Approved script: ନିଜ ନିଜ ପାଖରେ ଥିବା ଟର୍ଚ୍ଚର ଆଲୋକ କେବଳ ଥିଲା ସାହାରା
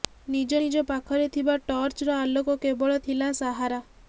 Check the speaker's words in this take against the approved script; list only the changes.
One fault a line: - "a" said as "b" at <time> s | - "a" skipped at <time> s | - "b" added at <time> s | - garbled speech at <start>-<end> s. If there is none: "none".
none